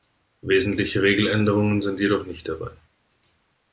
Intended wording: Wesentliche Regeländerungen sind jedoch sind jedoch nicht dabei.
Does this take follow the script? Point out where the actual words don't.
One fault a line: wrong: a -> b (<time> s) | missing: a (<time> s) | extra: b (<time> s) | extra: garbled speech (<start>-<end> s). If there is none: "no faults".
missing: sind jedoch (2.2 s)